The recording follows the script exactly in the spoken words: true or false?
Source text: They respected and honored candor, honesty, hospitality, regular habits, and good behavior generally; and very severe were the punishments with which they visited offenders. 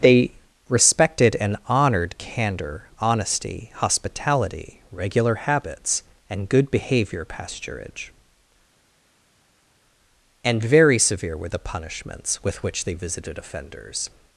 false